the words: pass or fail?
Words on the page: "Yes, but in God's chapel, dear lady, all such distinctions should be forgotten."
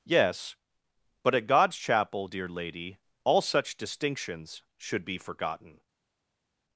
fail